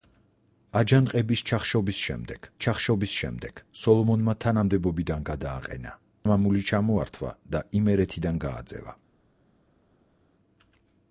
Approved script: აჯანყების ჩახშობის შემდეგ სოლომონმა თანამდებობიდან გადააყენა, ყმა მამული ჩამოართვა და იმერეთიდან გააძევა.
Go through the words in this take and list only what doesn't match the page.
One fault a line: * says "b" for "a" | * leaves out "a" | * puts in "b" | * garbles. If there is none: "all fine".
* puts in "ჩახშობის შემდეგ"
* leaves out "ყმა"